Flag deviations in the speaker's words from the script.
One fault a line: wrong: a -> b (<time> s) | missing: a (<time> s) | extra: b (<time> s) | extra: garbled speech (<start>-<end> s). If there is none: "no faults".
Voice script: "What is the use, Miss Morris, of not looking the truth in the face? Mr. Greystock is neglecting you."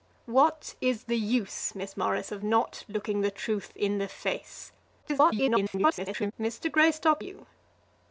extra: garbled speech (5.0-6.3 s)
missing: is neglecting (7.2 s)